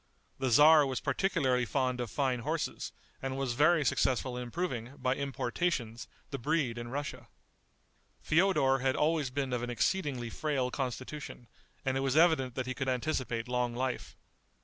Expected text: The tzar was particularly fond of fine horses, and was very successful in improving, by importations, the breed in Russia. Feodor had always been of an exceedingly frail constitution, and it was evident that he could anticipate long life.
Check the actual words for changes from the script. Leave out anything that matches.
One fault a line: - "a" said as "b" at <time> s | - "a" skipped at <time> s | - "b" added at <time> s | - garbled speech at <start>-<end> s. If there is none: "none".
none